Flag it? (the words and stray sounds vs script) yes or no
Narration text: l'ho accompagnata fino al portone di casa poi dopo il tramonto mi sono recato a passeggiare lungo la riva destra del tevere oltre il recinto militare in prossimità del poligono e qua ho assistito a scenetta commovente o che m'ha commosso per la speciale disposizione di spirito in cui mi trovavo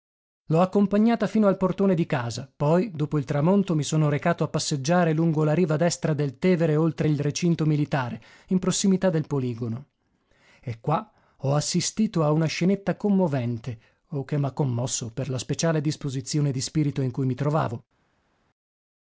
yes